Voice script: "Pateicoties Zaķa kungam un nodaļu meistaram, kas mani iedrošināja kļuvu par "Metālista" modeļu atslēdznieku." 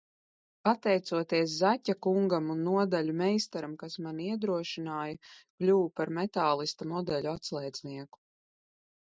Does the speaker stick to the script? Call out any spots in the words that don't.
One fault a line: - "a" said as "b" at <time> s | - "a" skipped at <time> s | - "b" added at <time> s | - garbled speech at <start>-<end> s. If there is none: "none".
none